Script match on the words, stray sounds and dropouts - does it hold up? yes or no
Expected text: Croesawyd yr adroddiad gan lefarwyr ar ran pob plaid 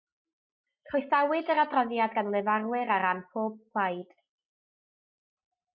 yes